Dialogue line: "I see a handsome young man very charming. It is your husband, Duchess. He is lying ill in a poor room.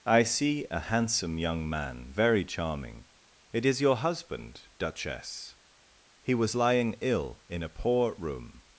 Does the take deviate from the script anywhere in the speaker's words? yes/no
yes